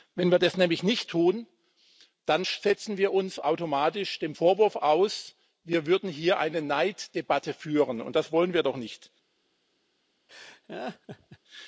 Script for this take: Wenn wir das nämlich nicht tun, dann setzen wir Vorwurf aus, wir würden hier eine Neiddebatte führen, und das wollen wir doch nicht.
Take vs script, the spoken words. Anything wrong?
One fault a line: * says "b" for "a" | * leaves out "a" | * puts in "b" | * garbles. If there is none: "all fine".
* puts in "uns automatisch dem"